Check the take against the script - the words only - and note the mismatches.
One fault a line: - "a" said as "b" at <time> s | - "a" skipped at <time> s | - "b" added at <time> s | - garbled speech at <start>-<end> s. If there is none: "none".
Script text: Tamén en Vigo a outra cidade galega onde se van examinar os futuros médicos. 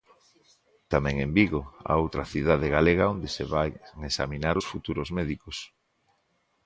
none